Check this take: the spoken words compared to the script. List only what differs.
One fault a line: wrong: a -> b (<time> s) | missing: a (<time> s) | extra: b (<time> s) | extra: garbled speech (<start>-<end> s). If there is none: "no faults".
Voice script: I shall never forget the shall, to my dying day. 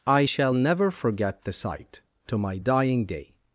wrong: shall -> sight (1.5 s)